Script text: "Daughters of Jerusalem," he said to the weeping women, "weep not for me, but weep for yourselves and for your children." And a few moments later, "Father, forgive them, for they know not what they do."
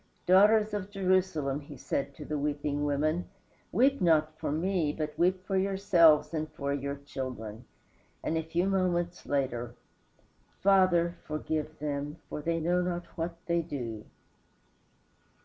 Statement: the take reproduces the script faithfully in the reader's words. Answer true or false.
true